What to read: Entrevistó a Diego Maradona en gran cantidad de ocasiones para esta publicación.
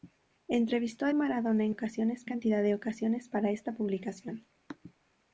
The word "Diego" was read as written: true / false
false